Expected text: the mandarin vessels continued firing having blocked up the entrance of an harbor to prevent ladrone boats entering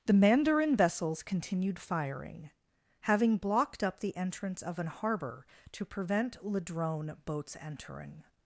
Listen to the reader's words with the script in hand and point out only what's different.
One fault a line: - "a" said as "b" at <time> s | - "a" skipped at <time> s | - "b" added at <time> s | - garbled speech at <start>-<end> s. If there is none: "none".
none